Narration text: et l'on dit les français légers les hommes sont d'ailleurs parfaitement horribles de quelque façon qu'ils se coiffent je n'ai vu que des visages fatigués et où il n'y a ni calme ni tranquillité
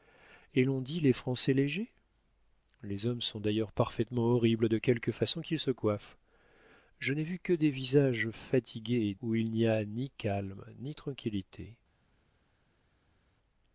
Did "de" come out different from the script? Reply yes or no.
no